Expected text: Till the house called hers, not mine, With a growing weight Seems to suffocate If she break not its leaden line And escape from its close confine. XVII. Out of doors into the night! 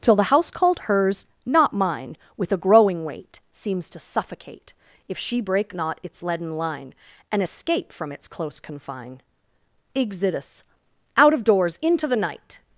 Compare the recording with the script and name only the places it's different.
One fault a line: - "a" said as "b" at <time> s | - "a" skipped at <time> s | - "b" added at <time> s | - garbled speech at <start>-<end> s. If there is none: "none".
- "XVII" said as "Exodus" at 9.9 s